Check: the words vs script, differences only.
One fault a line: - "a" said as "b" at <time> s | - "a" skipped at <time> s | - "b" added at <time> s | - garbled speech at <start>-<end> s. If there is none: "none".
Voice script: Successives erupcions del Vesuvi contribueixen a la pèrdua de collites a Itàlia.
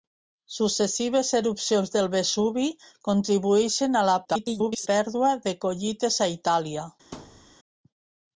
- garbled speech at 4.2-4.9 s